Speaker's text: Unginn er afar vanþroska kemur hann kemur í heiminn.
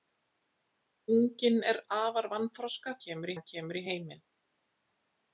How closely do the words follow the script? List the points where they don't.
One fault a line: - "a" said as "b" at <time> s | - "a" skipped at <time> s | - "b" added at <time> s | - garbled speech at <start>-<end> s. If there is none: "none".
none